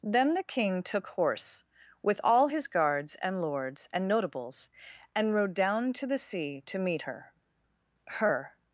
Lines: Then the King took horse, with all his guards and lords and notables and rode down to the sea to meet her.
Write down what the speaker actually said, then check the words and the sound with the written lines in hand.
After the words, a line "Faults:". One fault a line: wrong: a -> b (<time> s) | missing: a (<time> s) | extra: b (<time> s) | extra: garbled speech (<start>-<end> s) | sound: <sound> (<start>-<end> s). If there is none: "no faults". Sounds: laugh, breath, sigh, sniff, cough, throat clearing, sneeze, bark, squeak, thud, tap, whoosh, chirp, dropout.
Then the King took horse, with all his guards and lords and notables and rode down to the sea to meet her her.
Faults:
extra: her (8.1 s)